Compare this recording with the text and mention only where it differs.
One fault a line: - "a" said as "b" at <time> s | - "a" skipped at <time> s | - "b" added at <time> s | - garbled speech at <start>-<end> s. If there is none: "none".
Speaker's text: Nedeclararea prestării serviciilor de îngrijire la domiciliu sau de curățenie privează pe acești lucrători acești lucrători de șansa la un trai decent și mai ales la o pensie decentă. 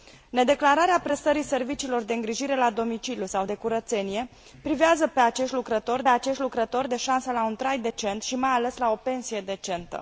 none